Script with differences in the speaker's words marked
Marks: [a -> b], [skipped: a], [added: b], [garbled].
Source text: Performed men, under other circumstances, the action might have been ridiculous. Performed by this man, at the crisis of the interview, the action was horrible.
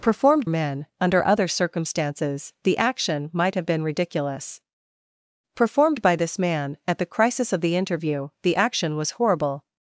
Performed men, under other circumstances, the action might have been ridiculous. Performed by this man, at the crisis of the interview, the action was horrible.